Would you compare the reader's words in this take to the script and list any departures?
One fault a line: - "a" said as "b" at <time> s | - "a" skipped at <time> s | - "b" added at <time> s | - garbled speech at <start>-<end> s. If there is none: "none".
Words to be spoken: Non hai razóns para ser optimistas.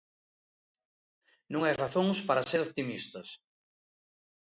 none